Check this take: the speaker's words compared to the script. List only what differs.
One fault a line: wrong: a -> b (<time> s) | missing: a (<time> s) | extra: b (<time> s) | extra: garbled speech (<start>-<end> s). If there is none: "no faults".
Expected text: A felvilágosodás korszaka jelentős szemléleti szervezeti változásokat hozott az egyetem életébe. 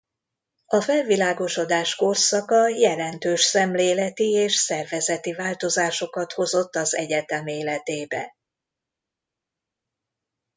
extra: és (4.3 s)